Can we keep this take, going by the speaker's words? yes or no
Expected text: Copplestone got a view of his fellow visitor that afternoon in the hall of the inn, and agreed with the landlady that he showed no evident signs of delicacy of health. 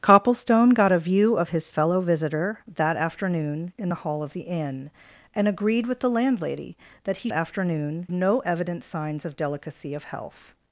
no